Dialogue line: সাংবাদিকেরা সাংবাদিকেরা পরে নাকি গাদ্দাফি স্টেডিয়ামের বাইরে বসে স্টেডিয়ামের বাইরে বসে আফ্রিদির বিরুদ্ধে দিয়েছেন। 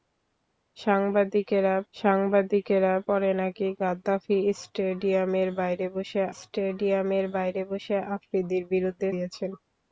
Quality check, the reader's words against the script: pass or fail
pass